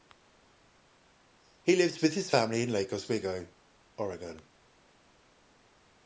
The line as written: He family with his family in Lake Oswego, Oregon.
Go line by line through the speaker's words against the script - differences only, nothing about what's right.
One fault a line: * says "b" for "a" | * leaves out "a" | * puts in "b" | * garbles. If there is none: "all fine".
* says "lives" for "family"